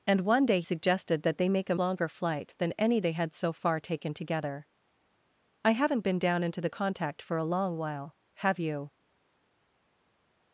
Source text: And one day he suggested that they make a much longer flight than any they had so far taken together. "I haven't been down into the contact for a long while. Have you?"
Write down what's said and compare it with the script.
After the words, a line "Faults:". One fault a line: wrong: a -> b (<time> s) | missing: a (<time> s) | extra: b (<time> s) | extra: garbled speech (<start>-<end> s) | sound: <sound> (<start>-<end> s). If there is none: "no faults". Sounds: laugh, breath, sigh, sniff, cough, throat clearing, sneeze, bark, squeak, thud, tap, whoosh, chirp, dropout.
And one day suggested that they make a longer flight than any they had so far taken together. "I haven't been down into the contact for a long while. Have you?"
Faults:
missing: he (0.6 s)
missing: much (1.7 s)